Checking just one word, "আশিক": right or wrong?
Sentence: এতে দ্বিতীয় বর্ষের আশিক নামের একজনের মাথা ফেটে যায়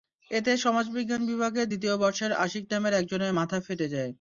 right